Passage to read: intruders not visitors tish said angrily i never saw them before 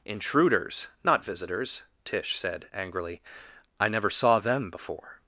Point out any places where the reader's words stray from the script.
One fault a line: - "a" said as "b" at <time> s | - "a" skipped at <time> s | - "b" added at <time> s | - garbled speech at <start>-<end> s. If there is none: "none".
none